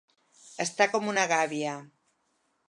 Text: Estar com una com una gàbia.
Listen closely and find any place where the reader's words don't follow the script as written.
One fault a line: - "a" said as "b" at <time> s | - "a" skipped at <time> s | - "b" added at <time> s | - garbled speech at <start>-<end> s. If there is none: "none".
- "com una" skipped at 1.3 s